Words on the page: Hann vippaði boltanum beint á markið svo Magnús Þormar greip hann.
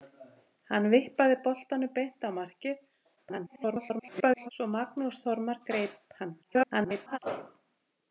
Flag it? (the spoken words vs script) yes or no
yes